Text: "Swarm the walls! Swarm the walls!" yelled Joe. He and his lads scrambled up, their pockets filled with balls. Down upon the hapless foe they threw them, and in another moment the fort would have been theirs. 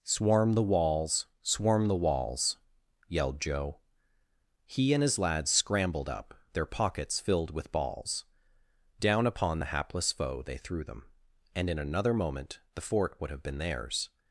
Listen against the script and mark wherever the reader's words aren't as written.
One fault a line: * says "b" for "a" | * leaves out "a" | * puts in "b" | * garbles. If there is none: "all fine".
all fine